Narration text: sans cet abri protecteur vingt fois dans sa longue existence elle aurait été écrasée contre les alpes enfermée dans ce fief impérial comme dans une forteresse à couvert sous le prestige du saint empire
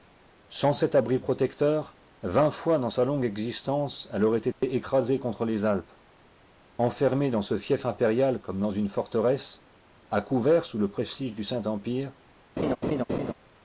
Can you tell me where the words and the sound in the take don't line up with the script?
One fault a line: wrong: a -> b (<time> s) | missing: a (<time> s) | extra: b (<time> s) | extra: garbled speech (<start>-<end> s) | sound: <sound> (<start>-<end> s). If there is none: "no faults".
sound: dropout (4.5-4.6 s)
sound: laugh (12.6-13.3 s)